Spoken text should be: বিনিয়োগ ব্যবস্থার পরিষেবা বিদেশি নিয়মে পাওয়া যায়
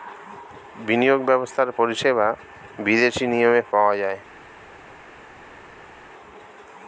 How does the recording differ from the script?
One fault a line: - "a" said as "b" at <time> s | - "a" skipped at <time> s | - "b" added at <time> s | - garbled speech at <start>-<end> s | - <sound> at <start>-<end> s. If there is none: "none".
none